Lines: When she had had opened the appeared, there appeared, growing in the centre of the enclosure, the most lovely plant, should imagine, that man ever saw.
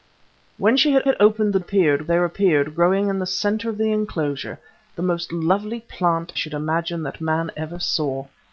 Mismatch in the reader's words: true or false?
false